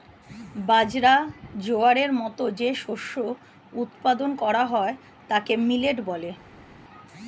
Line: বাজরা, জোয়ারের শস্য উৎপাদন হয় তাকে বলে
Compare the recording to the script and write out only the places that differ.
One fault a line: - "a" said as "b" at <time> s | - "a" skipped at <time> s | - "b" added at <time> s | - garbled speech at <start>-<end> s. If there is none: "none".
- "মতো যে" added at 2.2 s
- "করা" added at 4.4 s
- "মিলেট" added at 5.7 s